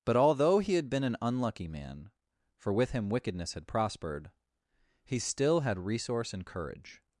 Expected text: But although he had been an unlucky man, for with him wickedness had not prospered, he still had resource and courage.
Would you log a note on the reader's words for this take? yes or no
yes